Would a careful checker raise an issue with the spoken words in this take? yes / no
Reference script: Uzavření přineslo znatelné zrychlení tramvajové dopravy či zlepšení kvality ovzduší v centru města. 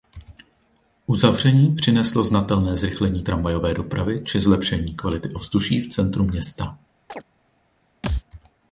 no